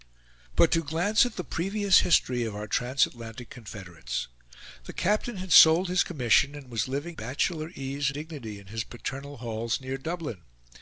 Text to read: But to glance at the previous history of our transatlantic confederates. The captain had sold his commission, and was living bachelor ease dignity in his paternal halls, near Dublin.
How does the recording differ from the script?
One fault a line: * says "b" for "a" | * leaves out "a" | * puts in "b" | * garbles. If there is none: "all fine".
all fine